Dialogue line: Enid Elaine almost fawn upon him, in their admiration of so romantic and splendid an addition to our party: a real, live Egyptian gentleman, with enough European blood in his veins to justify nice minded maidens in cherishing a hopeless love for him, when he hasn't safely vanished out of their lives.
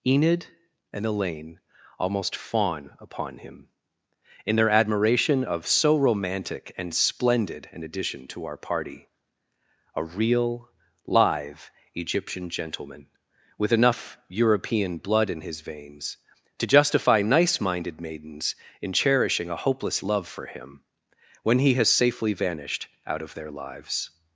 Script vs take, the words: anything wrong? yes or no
yes